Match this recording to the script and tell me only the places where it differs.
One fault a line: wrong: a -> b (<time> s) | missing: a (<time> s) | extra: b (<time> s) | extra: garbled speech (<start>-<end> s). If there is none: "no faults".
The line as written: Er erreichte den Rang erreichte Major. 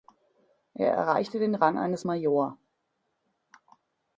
wrong: erreichte -> eines (1.8 s)